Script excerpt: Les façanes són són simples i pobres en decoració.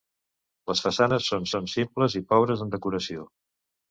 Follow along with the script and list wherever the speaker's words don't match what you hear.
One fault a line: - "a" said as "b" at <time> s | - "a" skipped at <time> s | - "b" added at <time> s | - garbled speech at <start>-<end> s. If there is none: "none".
none